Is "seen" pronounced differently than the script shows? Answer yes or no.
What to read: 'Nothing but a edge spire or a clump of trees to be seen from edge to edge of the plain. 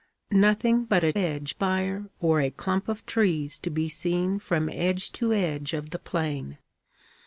no